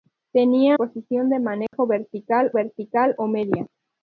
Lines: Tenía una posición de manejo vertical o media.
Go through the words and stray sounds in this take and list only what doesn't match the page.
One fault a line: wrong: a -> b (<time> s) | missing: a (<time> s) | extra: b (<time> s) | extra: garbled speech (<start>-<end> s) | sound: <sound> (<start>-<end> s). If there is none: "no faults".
missing: una (0.8 s)
sound: dropout (1.7-1.7 s)
extra: vertical (2.5 s)